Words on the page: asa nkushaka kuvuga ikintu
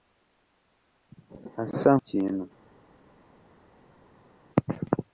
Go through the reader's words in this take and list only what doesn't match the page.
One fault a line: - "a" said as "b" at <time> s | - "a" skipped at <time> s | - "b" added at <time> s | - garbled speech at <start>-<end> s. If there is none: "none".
- "nkushaka kuvuga" skipped at 1.9 s